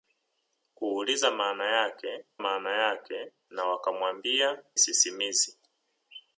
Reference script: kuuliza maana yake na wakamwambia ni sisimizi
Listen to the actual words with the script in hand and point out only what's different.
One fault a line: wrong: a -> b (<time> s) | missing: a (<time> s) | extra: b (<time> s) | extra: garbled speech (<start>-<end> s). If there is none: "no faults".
extra: maana yake (2.4 s)
missing: ni (4.6 s)